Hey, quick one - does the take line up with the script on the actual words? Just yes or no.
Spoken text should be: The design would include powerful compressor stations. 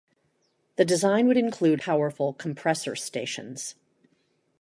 yes